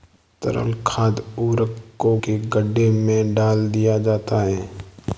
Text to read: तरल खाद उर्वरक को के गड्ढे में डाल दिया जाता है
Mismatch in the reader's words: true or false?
false